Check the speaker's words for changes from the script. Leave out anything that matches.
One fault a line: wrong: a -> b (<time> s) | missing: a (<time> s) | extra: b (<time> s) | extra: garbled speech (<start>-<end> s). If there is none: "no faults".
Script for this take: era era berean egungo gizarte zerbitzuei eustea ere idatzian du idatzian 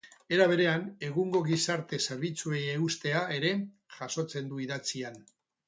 missing: era (0.5 s)
wrong: idatzian -> jasotzen (4.0 s)